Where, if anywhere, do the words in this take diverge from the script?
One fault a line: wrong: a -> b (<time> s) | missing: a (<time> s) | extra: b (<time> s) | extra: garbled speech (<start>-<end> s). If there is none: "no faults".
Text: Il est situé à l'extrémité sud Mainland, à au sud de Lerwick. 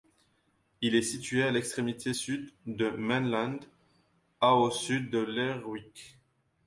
extra: de (2.7 s)